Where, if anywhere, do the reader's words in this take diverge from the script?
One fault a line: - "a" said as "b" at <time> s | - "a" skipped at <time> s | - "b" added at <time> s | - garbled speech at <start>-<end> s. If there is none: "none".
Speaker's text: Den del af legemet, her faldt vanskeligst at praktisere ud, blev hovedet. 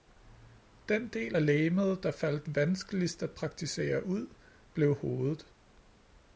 - "her" said as "der" at 2.0 s